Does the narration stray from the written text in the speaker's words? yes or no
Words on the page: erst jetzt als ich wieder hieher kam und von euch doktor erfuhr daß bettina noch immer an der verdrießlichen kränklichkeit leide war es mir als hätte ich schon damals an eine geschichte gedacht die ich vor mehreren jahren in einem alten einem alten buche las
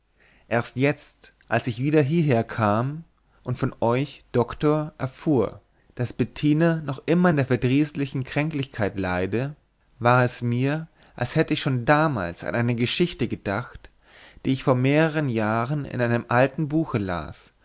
yes